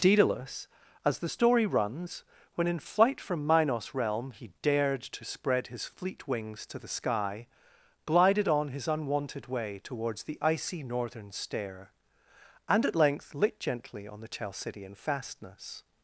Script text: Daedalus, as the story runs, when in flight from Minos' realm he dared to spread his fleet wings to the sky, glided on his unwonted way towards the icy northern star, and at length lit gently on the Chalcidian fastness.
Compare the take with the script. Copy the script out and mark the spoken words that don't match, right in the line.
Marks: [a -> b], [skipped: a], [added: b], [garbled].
Daedalus, as the story runs, when in flight from Minos' realm he dared to spread his fleet wings to the sky, glided on his unwonted way towards the icy northern [star, -> stair] and at length lit gently on the Chalcidian fastness.